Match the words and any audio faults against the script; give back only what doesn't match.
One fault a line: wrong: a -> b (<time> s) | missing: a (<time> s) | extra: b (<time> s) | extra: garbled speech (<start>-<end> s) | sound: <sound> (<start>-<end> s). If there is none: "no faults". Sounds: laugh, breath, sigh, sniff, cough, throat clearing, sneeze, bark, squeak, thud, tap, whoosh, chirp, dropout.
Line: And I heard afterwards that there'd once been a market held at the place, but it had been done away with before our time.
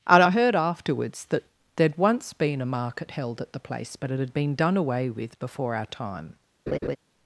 sound: laugh (6.7-7.0 s)